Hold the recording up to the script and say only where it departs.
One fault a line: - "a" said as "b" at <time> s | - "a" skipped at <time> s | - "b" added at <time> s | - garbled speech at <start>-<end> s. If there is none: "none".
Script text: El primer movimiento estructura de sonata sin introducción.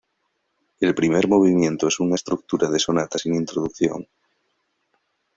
- "es una" added at 1.9 s